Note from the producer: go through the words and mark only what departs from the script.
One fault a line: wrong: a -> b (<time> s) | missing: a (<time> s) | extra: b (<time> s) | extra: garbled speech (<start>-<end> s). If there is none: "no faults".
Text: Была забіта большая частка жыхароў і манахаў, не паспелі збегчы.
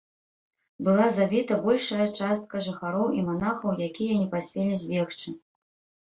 extra: якія (3.9 s)